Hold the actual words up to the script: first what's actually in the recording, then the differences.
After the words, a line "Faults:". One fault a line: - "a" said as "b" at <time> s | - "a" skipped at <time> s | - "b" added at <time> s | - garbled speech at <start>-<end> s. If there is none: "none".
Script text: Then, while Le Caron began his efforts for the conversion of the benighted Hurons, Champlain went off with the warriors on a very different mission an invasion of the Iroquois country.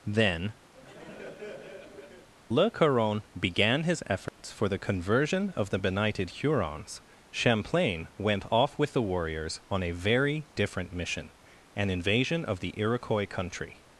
Then, Le Caron began his efforts for the conversion of the benighted Hurons, Champlain went off with the warriors on a very different mission an invasion of the Iroquois country.
Faults:
- "while" skipped at 0.5 s